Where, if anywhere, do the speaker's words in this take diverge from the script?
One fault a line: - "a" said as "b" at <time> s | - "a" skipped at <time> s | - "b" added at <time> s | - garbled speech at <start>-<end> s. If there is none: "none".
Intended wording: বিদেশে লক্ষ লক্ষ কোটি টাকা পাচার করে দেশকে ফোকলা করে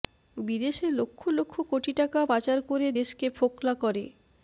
none